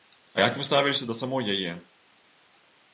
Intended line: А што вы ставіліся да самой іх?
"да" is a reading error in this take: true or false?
false